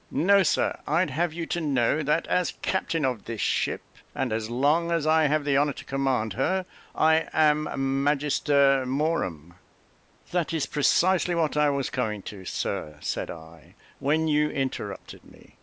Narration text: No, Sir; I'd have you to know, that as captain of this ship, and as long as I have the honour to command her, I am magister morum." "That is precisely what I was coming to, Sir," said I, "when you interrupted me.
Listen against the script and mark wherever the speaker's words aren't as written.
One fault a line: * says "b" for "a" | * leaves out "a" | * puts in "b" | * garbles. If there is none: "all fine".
all fine